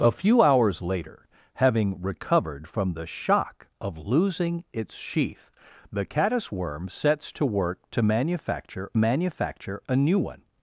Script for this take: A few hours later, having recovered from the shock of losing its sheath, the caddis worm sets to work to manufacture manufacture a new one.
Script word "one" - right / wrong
right